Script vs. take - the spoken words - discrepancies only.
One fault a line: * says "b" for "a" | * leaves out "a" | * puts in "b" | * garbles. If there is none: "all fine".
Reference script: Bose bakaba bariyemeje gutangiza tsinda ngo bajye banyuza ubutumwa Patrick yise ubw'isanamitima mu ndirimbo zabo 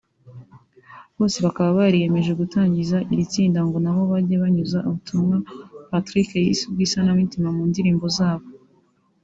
* puts in "iri"
* puts in "nabo"